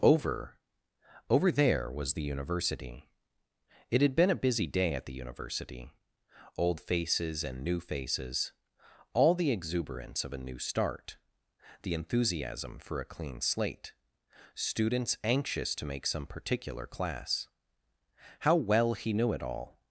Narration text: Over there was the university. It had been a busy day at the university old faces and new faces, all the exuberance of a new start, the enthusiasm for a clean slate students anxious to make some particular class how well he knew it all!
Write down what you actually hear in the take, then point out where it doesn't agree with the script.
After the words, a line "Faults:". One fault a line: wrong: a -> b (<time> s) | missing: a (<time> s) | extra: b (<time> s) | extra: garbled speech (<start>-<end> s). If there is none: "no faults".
Over over there was the university. It had been a busy day at the university old faces and new faces, all the exuberance of a new start, the enthusiasm for a clean slate students anxious to make some particular class how well he knew it all!
Faults:
extra: over (1.3 s)